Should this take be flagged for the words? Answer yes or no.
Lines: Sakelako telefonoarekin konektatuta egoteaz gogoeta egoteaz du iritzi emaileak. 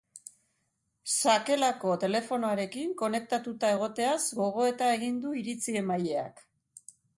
yes